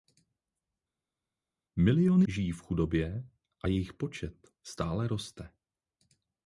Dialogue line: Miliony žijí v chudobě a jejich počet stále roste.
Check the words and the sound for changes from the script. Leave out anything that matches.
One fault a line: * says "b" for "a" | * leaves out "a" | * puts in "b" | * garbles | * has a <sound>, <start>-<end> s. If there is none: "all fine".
all fine